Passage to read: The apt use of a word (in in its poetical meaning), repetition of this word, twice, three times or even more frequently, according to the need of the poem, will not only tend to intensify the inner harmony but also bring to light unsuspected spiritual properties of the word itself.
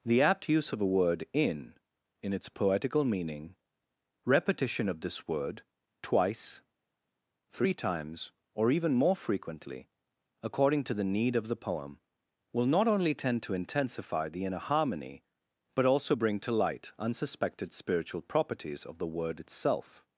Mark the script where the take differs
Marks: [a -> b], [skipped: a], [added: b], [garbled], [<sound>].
The apt use of a word (in in its poetical meaning), repetition of this word, twice, three times or even more frequently, according to the need of the poem, will not only tend to intensify the inner harmony but also bring to light unsuspected spiritual properties of the word itself.